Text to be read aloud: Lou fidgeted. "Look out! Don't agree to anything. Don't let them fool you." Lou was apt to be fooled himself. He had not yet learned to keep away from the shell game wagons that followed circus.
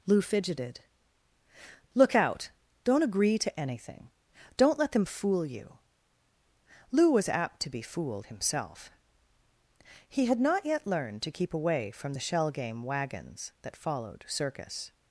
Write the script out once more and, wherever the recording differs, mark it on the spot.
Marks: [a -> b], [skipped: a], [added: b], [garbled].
Lou fidgeted. "Look out! Don't agree to anything. Don't let them fool you." Lou was apt to be fooled himself. He had not yet learned to keep away from the shell game wagons that followed circus.